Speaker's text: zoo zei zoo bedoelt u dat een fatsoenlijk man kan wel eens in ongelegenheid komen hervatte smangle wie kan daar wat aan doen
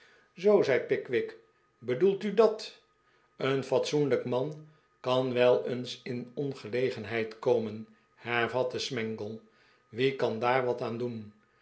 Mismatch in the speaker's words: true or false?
true